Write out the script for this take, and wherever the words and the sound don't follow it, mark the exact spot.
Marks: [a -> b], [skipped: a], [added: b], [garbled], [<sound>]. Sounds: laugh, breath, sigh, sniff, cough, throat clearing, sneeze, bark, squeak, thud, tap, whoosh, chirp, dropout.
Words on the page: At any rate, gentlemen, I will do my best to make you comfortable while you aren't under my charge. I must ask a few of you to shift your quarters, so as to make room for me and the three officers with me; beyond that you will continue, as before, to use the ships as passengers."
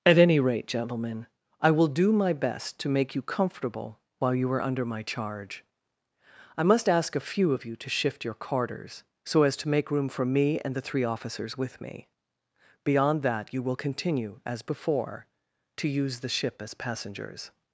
At any rate, gentlemen, I will do my best to make you comfortable while you [aren't -> are] under my charge. I must ask a few of you to shift your quarters, so as to make room for me and the three officers with me; beyond that you will continue, as before, to use the [ships -> ship] as passengers."